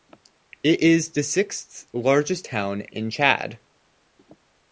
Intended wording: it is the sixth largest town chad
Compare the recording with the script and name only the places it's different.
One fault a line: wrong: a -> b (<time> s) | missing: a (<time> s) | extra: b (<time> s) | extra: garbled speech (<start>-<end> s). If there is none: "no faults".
extra: in (2.8 s)